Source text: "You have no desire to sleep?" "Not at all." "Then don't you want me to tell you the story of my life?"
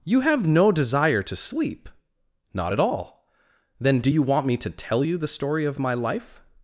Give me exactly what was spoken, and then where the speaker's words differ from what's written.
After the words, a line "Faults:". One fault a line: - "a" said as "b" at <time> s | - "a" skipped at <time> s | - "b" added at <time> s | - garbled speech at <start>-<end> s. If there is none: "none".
"You have no desire to sleep?" "Not at all." "Then do you want me to tell you the story of my life?"
Faults:
- "don't" said as "do" at 4.0 s